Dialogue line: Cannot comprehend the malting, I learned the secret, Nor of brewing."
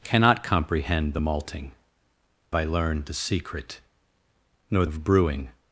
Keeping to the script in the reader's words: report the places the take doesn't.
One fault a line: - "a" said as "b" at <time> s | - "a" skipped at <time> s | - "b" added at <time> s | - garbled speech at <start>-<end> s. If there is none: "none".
none